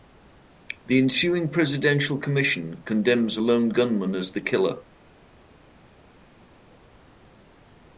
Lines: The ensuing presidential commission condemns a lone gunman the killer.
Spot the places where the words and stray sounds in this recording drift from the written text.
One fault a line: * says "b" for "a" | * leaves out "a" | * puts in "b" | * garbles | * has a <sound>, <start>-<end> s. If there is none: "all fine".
* puts in "as"